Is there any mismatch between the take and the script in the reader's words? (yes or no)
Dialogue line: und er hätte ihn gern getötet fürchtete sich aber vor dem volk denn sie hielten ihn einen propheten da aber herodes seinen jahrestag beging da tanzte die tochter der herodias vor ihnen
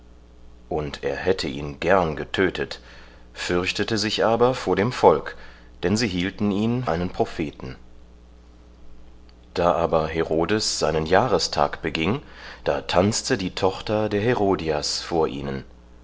no